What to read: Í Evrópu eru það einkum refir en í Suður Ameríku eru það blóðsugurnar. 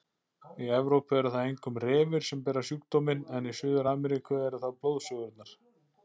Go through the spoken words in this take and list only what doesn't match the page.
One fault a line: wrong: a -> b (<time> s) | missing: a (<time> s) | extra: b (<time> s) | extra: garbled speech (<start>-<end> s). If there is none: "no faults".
extra: sem bera sjúkdóminn (2.3 s)